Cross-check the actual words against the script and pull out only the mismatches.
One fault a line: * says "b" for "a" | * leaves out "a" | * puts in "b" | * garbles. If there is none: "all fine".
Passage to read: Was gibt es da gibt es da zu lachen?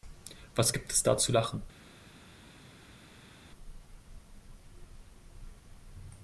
* leaves out "gibt es da"